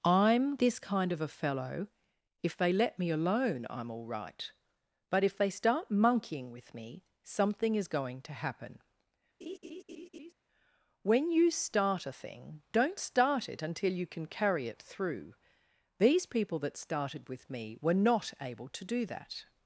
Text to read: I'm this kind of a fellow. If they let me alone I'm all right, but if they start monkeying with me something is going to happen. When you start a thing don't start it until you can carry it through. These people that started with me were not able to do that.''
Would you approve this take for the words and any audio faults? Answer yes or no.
no